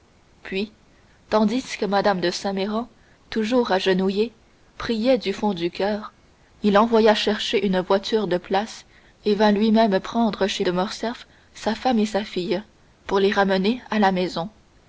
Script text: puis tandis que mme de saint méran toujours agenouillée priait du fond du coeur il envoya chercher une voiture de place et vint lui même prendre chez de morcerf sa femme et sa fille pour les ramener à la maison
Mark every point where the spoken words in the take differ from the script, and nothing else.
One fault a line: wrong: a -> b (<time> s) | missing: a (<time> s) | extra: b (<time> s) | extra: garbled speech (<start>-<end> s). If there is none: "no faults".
no faults